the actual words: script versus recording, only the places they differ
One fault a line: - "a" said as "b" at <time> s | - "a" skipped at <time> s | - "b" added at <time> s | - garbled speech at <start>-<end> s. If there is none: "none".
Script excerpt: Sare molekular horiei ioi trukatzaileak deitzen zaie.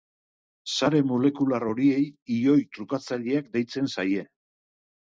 none